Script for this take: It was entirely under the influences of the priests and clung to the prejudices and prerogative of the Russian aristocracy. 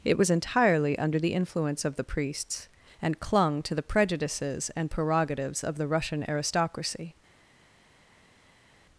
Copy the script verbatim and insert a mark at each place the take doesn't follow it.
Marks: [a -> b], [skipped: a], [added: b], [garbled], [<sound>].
It was entirely under the [influences -> influence] of the priests and clung to the prejudices and [prerogative -> prerogatives] of the Russian aristocracy.